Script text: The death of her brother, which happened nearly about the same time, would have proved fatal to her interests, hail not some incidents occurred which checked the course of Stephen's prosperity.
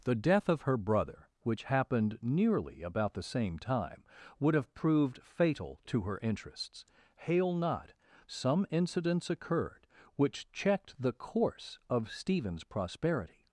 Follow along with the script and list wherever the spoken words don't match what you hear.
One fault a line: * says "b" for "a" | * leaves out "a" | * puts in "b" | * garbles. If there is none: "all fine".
all fine